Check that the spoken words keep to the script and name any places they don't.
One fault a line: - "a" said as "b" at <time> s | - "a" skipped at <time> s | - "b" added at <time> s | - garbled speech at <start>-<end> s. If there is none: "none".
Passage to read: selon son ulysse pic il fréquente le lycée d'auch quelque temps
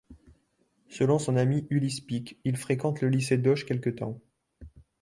- "ami" added at 1.4 s